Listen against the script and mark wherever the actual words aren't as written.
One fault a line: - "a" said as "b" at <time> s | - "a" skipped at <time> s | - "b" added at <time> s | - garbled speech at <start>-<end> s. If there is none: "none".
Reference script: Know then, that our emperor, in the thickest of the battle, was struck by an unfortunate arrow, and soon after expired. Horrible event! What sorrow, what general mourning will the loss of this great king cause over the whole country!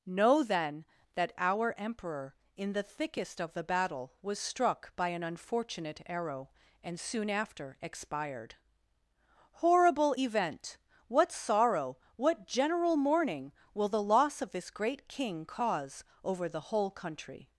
none